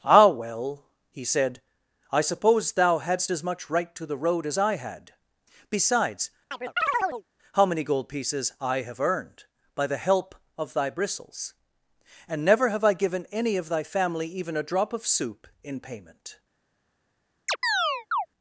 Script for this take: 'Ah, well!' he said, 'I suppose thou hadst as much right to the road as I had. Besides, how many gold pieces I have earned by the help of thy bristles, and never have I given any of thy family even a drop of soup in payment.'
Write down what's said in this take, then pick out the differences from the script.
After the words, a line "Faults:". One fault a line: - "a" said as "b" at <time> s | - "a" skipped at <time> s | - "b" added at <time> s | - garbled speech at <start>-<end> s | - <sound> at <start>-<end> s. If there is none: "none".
'Ah, well!' he said, 'I suppose thou hadst as much right to the road as I had. Besides, how many gold pieces I have earned by the help of thy bristles, and never have I given any of thy family even a drop of soup in payment.'
Faults:
- chirp at 6.5-7.2 s
- chirp at 17.5-18.3 s